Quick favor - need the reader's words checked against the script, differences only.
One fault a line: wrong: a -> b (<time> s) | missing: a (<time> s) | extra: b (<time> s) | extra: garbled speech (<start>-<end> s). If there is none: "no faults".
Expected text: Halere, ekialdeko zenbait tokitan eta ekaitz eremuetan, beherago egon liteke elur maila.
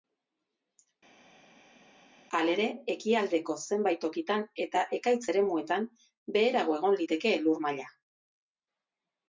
no faults